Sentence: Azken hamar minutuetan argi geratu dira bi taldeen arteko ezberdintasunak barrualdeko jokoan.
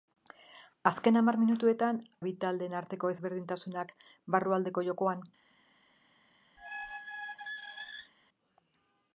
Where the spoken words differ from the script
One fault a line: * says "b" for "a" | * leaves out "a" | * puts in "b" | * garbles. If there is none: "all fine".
* leaves out "argi geratu dira"